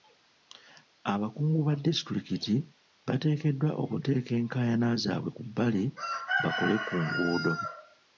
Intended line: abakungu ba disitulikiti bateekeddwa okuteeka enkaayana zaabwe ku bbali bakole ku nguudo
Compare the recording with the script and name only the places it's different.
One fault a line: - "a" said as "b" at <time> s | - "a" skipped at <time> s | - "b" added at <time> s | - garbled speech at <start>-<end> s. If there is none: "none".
none